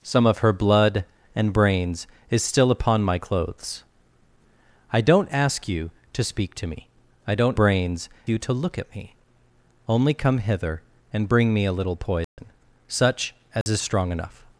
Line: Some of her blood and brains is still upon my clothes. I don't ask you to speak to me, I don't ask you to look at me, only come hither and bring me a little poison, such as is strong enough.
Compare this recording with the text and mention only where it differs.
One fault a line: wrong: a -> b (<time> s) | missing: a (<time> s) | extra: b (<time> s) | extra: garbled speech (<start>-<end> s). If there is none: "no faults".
wrong: ask -> brains (7.6 s)